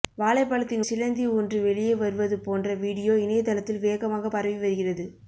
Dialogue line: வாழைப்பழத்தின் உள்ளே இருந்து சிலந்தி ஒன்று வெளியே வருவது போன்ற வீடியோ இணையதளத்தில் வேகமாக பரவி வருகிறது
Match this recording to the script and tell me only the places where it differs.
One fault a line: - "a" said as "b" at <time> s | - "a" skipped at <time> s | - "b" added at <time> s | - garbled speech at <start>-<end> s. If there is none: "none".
- "உள்ளே இருந்து" skipped at 0.8 s